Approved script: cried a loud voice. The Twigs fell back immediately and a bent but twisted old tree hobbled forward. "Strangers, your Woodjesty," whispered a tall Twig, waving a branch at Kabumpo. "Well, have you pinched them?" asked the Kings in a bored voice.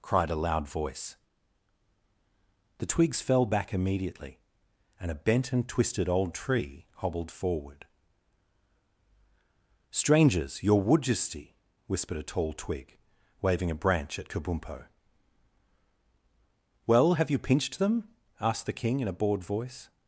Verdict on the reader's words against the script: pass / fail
fail